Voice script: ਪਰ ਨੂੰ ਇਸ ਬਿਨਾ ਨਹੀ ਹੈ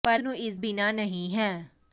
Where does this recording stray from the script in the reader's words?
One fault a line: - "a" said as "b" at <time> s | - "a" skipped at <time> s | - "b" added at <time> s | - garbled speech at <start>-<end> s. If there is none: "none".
none